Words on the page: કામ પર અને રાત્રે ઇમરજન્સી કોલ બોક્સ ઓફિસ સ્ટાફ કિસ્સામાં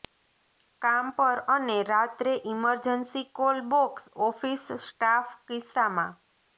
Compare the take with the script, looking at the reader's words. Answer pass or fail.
pass